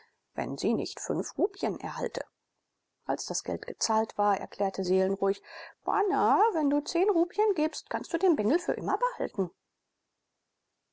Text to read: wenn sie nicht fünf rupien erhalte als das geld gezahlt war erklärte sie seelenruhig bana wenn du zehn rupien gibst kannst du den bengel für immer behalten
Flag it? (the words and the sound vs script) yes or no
yes